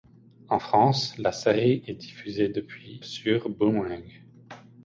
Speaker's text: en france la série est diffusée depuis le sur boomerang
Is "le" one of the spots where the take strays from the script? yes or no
yes